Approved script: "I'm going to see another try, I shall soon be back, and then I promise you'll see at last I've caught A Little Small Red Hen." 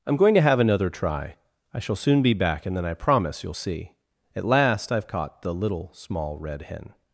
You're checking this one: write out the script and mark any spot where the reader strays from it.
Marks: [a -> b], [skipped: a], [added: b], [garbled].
"I'm going to [see -> have] another try, I shall soon be back, and then I promise you'll see at last I've caught [A -> The] Little Small Red Hen."